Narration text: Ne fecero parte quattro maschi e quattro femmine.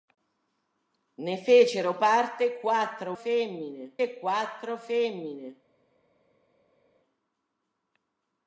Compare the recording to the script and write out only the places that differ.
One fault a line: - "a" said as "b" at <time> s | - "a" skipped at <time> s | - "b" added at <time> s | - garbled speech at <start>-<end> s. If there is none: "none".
- "maschi" said as "femmine" at 3.1 s